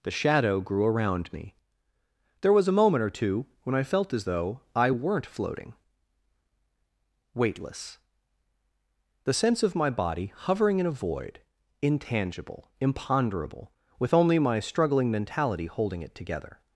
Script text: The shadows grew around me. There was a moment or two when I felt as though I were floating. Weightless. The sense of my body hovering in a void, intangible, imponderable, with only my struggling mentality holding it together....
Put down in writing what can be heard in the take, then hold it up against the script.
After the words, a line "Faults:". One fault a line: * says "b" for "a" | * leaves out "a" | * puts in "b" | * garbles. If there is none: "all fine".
The shadow grew around me. There was a moment or two when I felt as though I weren't floating. Weightless. The sense of my body hovering in a void, intangible, imponderable, with only my struggling mentality holding it together....
Faults:
* says "shadow" for "shadows"
* says "weren't" for "were"